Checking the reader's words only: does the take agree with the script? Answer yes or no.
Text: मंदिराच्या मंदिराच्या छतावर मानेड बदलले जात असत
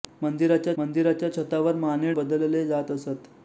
yes